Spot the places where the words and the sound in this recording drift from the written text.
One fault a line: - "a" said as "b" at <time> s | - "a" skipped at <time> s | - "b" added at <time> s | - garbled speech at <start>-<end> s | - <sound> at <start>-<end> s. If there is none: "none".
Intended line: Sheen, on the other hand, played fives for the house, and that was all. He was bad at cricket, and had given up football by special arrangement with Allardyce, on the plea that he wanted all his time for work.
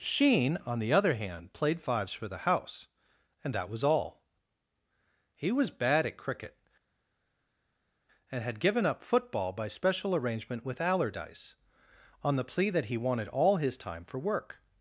none